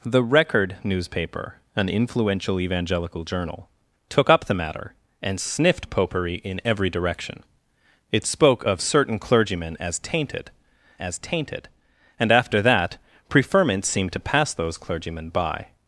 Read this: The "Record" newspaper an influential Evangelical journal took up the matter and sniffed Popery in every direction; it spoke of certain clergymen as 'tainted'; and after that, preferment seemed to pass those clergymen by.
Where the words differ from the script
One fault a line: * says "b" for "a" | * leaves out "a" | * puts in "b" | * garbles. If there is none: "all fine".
* puts in "as tainted"